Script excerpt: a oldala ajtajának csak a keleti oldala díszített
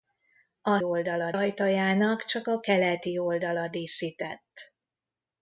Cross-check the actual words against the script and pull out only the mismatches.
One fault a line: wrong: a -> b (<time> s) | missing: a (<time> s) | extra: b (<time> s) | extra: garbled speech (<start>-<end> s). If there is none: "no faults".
no faults